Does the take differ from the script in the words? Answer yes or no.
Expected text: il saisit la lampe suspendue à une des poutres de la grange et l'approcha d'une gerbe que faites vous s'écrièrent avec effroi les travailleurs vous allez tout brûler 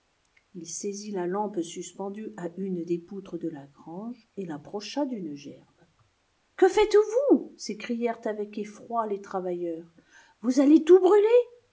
no